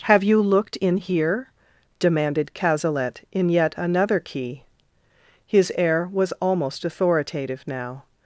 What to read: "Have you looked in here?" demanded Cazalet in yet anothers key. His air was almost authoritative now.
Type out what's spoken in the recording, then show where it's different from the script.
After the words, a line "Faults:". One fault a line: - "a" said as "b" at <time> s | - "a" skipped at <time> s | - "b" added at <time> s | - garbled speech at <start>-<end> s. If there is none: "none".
"Have you looked in here?" demanded Cazalet in yet another key. His air was almost authoritative now.
Faults:
- "anothers" said as "another" at 3.8 s